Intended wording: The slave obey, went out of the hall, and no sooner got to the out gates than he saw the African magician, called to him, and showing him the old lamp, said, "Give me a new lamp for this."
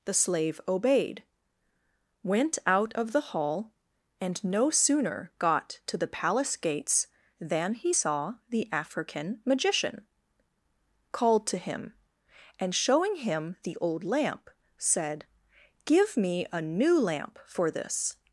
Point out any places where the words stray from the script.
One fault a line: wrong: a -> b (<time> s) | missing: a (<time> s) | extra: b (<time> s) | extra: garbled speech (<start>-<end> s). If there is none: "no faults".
wrong: obey -> obeyed (0.7 s)
wrong: out -> palace (6.1 s)